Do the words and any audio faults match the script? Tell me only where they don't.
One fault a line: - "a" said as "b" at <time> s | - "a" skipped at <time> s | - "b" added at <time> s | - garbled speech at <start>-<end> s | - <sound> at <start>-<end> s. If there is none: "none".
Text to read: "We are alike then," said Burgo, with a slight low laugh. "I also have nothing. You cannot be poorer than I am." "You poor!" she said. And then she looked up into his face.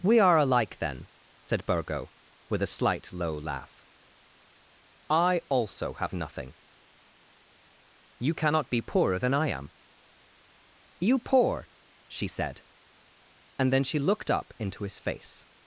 none